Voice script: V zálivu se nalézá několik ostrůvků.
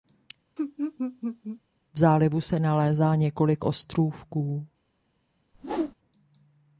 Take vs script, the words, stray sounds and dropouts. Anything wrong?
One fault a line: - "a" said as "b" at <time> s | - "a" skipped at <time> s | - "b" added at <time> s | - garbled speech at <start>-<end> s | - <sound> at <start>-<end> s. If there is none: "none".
- laugh at 0.6-1.6 s
- whoosh at 5.5-6.0 s